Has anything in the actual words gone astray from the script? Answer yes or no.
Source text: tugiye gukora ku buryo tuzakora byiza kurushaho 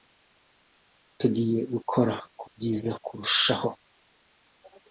yes